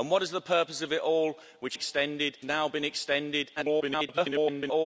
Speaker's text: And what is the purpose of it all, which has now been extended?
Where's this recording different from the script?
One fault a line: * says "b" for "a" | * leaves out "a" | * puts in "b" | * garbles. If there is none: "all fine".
* says "extended" for "has"
* garbles